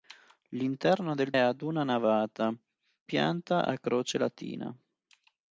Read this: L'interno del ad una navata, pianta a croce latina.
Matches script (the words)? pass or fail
pass